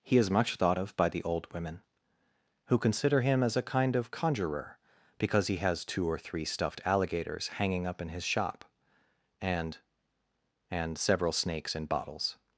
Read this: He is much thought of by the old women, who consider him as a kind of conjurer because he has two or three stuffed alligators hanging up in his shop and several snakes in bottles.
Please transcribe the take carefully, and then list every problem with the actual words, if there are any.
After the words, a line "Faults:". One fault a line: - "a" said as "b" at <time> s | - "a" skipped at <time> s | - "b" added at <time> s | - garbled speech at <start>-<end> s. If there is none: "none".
He is much thought of by the old women, who consider him as a kind of conjurer because he has two or three stuffed alligators hanging up in his shop and and several snakes in bottles.
Faults:
- "and" added at 10.7 s